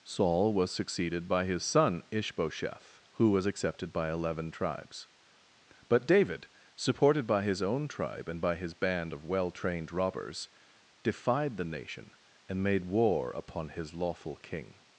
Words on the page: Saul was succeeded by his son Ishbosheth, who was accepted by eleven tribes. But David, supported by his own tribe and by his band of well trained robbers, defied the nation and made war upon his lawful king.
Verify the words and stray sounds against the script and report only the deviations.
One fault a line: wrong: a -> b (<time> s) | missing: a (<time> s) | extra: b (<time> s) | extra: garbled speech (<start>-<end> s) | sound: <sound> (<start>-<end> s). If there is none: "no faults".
no faults